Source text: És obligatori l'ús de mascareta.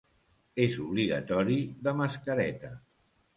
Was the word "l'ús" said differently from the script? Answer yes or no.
yes